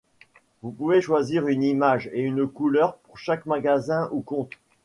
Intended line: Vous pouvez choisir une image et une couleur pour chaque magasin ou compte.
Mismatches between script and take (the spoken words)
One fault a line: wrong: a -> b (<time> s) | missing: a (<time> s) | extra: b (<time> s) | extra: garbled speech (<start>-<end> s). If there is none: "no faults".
no faults